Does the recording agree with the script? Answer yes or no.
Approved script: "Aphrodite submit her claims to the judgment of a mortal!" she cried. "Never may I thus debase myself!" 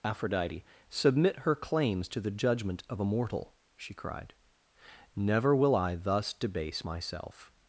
no